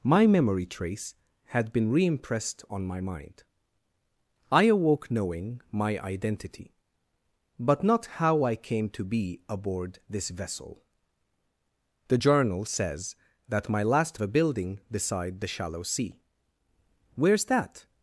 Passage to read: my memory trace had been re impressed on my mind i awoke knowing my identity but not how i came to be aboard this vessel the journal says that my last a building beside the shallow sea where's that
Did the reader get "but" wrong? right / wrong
right